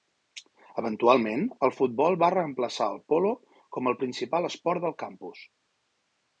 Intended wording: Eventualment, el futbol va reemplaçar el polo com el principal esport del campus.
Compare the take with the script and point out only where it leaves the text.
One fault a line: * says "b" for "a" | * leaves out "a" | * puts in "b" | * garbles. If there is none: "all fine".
all fine